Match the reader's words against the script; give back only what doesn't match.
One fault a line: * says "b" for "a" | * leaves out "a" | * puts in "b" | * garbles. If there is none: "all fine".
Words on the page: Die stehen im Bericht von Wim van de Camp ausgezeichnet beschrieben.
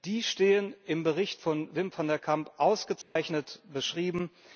all fine